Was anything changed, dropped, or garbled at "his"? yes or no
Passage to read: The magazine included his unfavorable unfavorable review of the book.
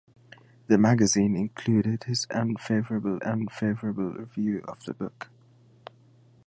no